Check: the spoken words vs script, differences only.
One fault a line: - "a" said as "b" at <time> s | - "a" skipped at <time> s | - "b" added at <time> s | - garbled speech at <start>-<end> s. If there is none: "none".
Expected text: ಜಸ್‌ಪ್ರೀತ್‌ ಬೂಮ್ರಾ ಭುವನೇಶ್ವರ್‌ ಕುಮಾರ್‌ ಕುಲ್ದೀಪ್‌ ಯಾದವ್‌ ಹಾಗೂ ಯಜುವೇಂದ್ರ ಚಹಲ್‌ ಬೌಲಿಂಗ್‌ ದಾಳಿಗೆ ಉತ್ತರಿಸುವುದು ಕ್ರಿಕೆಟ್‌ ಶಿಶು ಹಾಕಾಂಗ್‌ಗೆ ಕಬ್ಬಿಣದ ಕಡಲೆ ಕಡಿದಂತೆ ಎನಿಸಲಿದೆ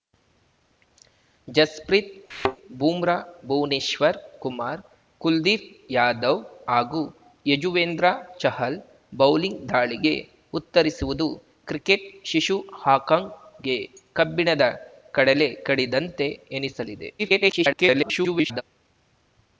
- garbled speech at 17.2-18.6 s